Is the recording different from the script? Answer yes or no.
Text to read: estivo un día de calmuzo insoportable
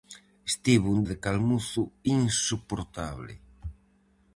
yes